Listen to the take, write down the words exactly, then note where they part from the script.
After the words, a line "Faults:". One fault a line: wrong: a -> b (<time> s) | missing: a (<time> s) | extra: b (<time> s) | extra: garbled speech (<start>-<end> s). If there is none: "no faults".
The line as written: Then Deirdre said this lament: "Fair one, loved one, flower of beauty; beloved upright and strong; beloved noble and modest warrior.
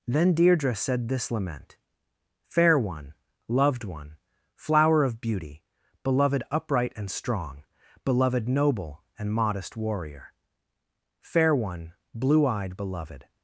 Then Deirdre said this lament: "Fair one, loved one, flower of beauty; beloved upright and strong; beloved noble and modest warrior. Fair one, blue eyed, beloved
Faults:
extra: Fair one blue eyed beloved (11.2 s)